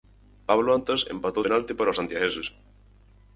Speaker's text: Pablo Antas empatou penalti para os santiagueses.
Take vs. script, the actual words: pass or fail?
pass